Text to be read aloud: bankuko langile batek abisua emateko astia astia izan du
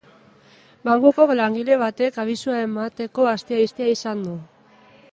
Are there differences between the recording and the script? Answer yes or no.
no